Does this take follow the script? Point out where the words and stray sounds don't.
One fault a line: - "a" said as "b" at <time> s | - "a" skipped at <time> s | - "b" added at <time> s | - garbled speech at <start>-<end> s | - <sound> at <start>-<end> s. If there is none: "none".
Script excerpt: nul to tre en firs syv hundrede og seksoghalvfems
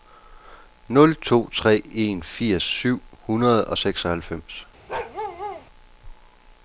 - bark at 4.9-5.7 s